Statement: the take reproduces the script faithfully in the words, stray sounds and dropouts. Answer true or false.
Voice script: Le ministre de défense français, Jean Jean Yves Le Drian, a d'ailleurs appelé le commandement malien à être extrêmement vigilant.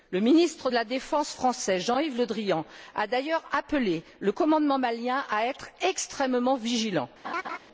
false